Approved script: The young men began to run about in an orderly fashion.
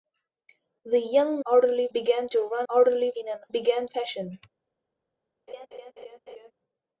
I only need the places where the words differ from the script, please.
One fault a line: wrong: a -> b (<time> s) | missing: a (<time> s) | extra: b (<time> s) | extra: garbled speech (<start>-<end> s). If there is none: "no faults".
wrong: men -> orderly (1.4 s)
wrong: about -> orderly (2.7 s)
wrong: orderly -> began (3.5 s)